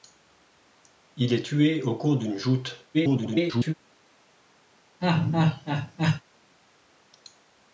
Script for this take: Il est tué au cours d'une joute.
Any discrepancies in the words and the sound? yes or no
yes